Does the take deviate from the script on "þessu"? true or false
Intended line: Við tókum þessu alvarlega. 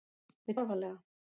true